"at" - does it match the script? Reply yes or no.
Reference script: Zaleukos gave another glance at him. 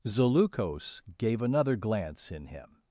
no